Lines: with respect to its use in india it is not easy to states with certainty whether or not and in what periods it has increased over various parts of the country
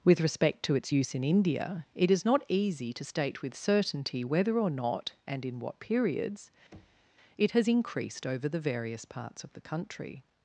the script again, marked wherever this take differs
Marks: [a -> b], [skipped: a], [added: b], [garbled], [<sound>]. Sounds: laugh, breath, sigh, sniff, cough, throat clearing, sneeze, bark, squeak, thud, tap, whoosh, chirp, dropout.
with respect to its use in india it is not easy to [states -> state] with certainty whether or not and in what periods [thud] it has increased over [added: the] various parts of the country